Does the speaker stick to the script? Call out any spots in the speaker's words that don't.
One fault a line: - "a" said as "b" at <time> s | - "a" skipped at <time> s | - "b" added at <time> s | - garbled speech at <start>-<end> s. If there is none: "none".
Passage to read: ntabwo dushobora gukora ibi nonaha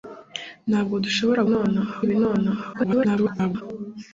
- "gukora" said as "nonaha" at 1.5 s
- garbled speech at 2.7-3.6 s